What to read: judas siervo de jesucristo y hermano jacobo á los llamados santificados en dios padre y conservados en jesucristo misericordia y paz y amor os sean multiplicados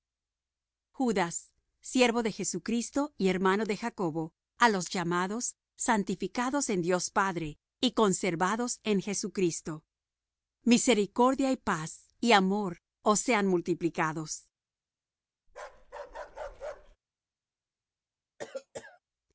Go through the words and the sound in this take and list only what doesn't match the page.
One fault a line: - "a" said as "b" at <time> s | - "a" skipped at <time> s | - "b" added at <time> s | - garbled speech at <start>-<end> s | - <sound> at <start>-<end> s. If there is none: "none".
- "de" added at 3.6 s
- bark at 15.5-17.0 s
- cough at 18.4-19.0 s